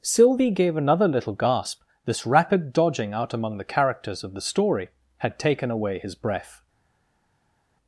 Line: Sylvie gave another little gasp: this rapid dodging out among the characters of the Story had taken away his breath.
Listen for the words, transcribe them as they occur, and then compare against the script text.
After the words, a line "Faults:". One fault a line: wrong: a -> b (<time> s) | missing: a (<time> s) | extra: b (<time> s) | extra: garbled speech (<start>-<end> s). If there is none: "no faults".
Sylvie gave another little gasp: this rapid dodging out among the characters of the Story had taken away his breath.
Faults:
no faults